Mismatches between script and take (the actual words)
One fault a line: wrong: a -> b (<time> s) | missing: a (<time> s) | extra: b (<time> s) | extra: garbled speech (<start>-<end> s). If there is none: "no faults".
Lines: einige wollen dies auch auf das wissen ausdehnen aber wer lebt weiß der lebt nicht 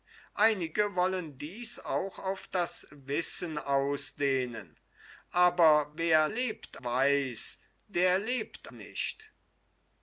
no faults